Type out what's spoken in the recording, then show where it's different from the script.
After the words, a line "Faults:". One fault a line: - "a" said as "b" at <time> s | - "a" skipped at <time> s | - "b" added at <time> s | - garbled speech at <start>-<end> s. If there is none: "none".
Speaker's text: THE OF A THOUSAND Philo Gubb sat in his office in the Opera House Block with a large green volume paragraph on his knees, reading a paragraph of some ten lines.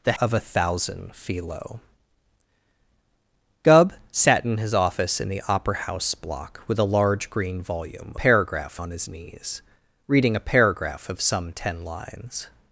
THE OF A THOUSAND Philo Gubb sat in his office in the Opera House Block with a large green volume paragraph on his knees, reading a paragraph of some ten lines.
Faults:
none